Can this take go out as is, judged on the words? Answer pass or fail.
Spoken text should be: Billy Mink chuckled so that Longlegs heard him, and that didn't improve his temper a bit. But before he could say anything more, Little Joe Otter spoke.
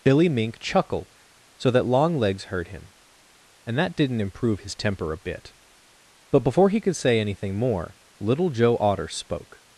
fail